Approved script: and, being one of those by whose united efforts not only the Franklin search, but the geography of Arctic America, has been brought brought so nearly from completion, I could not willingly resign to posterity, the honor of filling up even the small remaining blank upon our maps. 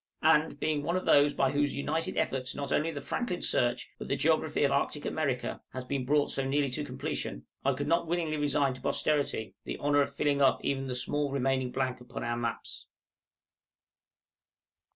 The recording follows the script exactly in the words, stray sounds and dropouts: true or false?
false